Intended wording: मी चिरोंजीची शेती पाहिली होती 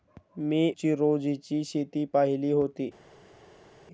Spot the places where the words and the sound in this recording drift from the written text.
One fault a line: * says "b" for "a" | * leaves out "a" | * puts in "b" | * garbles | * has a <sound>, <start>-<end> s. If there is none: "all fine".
all fine